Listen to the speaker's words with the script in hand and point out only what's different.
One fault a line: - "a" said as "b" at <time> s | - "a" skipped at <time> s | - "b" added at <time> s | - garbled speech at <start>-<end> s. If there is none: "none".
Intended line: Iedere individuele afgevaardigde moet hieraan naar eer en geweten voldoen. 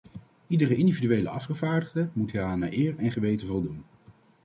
none